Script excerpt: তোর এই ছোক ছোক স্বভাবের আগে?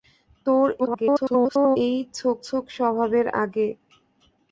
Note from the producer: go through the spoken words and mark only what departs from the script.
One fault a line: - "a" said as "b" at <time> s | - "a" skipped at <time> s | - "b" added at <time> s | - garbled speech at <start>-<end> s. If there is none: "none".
- garbled speech at 0.8-1.8 s